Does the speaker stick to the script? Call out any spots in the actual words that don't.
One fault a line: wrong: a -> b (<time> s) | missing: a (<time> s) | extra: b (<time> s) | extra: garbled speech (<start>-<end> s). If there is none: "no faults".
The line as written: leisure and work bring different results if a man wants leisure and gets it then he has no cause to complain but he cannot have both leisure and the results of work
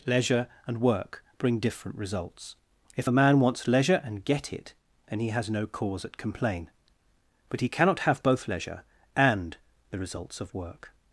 wrong: gets -> get (4.2 s)
wrong: to -> at (6.0 s)